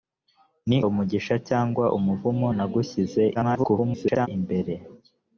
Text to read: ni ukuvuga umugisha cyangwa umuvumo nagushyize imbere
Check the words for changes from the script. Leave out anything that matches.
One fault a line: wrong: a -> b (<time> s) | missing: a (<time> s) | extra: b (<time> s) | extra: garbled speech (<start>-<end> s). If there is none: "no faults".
missing: ukuvuga (0.8 s)
extra: garbled speech (3.3-4.3 s)